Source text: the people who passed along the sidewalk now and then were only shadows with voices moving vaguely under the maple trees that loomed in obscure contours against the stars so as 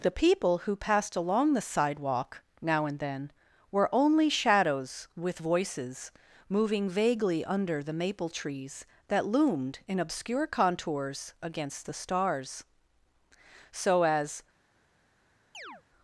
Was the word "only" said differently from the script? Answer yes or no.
no